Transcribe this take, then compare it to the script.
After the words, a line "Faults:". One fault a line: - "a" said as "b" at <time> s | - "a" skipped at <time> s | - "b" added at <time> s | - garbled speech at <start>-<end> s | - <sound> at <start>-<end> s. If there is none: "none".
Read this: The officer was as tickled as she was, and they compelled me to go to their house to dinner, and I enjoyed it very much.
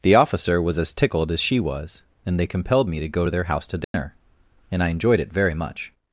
The officer was as tickled as she was, and they compelled me to go to their house to dinner, and I enjoyed it very much.
Faults:
- dropout at 3.8-3.9 s